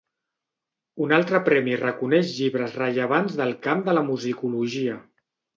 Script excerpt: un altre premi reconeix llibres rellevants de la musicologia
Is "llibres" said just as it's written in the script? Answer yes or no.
yes